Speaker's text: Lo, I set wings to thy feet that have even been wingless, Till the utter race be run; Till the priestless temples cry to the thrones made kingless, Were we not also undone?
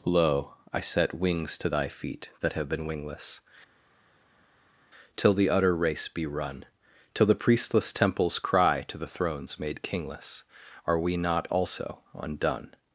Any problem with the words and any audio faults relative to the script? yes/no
yes